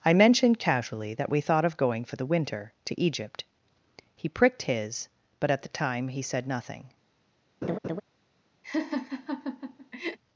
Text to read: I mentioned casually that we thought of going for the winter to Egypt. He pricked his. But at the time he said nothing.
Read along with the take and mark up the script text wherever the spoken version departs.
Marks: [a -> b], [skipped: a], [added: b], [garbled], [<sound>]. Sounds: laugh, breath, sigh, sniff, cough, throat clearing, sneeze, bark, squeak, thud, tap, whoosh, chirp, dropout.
I mentioned casually that we thought of going for the winter to Egypt. He pricked his. But at the time he said nothing. [laugh] [laugh]